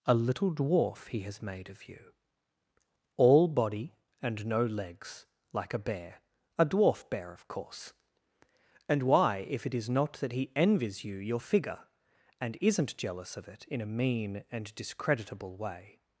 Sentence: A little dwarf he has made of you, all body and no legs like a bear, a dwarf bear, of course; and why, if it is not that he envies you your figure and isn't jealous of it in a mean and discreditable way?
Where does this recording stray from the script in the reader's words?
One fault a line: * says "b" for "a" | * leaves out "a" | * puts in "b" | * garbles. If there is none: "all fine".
all fine